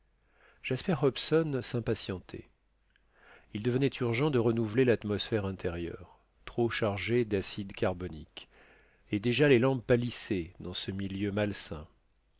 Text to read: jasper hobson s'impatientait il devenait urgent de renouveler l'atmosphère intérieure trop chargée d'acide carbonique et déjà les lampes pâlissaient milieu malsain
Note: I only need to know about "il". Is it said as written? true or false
true